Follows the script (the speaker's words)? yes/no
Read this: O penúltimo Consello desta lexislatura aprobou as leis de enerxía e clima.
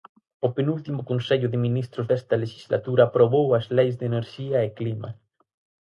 no